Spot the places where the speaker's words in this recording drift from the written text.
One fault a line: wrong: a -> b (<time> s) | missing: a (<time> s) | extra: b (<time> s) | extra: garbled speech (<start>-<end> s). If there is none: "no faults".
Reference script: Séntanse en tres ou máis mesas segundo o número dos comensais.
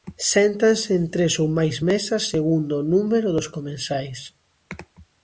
no faults